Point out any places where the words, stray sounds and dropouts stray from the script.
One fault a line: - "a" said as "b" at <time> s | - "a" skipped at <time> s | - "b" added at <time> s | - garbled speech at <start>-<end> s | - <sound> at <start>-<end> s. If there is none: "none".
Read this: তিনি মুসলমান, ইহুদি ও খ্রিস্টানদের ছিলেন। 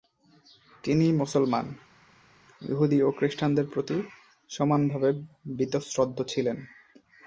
- "প্রতি সমানভাবে বীতশ্রদ্ধ" added at 3.7 s